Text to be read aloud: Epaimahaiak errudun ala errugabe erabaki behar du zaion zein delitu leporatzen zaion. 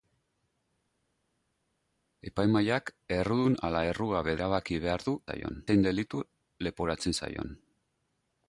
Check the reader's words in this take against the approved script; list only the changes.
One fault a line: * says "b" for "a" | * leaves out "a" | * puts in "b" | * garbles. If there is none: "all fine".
all fine